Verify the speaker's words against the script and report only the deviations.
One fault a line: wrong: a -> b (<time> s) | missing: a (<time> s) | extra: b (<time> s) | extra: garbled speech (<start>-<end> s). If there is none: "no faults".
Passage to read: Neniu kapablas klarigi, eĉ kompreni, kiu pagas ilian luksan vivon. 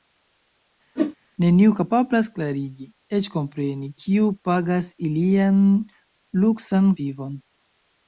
no faults